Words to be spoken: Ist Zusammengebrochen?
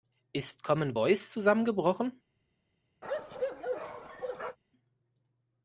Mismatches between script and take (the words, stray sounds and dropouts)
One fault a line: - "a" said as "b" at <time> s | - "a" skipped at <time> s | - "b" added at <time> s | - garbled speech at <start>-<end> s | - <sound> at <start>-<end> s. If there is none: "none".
- "Commen Voice" added at 0.6 s
- bark at 3.0-4.6 s